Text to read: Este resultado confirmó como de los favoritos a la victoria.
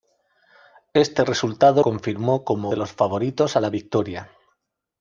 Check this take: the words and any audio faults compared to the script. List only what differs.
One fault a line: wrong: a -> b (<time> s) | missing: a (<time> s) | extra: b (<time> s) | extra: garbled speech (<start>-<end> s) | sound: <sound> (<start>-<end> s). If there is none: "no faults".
no faults